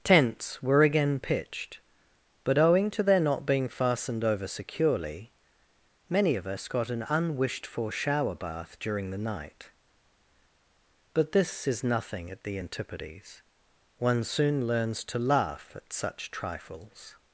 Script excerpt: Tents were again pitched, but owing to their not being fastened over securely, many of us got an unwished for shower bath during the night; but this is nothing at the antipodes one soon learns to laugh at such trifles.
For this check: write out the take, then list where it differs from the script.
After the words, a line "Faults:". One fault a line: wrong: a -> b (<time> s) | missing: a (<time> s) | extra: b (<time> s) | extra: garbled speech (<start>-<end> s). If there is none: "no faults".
Tents were again pitched, but owing to their not being fastened over securely, many of us got an unwished for shower bath during the night; but this is nothing at the antipodes one soon learns to laugh at such trifles.
Faults:
no faults